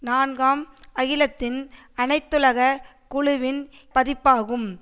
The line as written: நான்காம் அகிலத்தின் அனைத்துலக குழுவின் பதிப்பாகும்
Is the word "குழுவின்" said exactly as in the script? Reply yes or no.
yes